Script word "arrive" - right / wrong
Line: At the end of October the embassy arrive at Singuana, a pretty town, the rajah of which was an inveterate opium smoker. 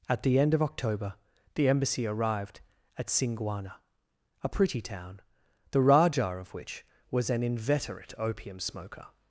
wrong